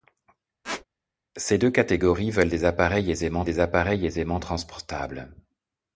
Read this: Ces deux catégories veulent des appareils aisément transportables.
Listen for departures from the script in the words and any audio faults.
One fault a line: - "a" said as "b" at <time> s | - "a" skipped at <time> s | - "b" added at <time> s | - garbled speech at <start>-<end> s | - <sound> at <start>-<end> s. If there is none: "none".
- squeak at 0.6-0.9 s
- "des appareils aisément" added at 3.4 s